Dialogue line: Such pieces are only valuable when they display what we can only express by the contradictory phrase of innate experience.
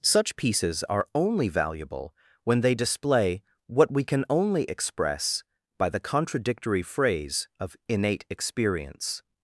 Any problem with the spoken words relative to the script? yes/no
no